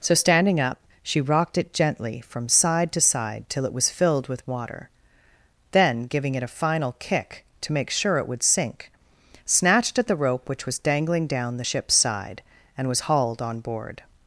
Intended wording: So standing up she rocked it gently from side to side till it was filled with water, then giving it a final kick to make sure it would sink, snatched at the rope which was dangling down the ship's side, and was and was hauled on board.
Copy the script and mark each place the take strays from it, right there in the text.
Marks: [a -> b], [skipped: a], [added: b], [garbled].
So standing up she rocked it gently from side to side till it was filled with water, then giving it a final kick to make sure it would sink, snatched at the rope which was dangling down the ship's side, and was [skipped: and was] hauled on board.